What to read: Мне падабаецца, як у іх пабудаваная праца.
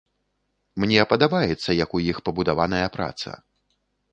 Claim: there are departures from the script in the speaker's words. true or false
false